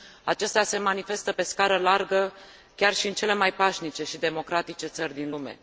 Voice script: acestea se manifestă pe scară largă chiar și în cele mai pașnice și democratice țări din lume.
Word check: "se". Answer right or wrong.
right